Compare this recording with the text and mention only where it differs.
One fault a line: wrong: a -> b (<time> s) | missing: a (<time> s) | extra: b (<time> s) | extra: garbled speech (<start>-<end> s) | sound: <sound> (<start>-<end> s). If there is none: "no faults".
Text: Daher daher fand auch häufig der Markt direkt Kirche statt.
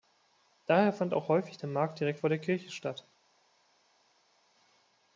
missing: daher (0.9 s)
extra: vor der (2.2 s)